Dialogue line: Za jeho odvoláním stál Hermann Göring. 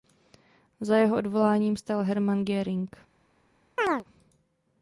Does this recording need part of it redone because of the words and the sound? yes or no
yes